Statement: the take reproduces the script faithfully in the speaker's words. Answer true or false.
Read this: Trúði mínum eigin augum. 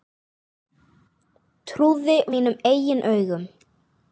true